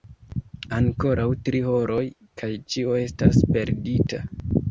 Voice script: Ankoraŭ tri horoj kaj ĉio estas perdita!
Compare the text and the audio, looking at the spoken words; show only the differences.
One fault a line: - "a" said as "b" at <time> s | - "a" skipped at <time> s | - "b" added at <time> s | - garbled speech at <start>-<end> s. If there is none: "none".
none